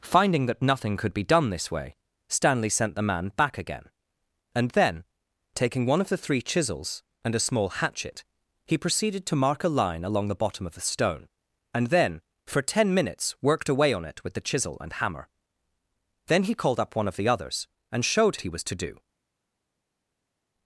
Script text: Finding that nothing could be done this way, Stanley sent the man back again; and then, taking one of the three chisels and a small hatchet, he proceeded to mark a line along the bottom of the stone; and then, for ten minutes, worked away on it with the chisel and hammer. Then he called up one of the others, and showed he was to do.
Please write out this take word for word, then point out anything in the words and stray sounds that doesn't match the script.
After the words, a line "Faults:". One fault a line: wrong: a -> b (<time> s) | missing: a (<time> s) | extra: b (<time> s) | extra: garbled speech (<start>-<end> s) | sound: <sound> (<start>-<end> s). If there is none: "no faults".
Finding that nothing could be done this way, Stanley sent the man back again; and then, taking one of the three chisels and a small hatchet, he proceeded to mark a line along the bottom of the stone; and then, for ten minutes, worked away on it with the chisel and hammer. Then he called up one of the others, and showed he was to do.
Faults:
no faults